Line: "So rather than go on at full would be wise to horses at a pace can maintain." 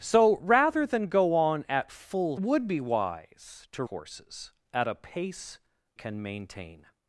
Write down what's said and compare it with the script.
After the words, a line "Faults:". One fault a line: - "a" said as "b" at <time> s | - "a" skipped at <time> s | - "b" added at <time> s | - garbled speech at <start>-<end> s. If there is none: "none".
"So rather than go on at full would be wise to horses at a pace can maintain."
Faults:
none